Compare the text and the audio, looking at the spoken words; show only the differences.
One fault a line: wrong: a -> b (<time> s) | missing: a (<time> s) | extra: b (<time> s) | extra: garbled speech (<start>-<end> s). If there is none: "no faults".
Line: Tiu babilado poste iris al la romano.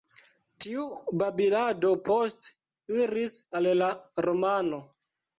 no faults